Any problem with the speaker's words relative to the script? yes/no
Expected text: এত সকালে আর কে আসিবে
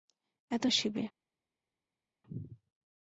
yes